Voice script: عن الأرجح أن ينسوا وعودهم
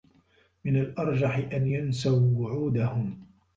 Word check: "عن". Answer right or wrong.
wrong